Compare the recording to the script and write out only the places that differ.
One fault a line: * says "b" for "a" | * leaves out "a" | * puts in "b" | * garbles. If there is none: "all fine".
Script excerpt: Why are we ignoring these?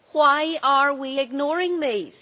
all fine